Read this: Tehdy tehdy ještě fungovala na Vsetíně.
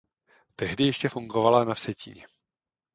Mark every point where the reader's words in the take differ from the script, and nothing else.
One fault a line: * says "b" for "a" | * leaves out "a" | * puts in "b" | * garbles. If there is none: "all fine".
* leaves out "tehdy"